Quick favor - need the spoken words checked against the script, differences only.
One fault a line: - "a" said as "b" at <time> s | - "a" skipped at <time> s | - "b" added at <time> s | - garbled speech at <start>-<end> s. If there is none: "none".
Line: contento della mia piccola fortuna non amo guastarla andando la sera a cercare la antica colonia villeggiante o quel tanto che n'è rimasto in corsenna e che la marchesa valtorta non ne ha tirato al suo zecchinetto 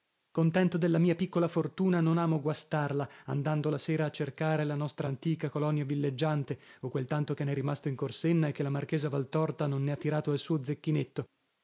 - "nostra" added at 4.7 s